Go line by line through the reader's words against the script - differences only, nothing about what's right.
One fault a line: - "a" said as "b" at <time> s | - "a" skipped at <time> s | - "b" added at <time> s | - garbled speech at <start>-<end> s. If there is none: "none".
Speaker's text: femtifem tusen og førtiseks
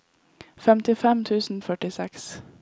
none